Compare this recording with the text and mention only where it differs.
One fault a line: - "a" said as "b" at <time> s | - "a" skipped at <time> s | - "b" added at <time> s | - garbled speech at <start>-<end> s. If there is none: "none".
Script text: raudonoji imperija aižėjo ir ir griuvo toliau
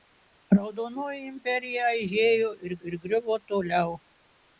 none